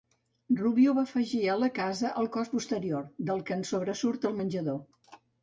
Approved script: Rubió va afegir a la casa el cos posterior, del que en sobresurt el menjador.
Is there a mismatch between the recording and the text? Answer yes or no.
no